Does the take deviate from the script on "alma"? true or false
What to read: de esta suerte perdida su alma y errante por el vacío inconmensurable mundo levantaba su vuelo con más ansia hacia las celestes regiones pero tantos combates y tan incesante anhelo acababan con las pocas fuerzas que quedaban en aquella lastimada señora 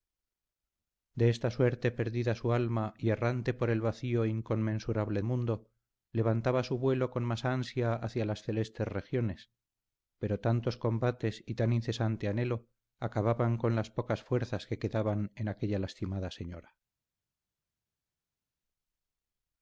false